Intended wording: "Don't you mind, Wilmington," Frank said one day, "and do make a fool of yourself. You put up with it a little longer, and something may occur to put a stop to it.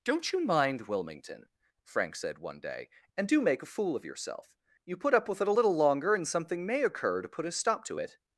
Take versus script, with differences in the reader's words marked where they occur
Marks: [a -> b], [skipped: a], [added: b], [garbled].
"Don't you mind, Wilmington," Frank said one day, "and do make a fool of yourself. You put up with it a little longer, and something may occur to put a stop to it.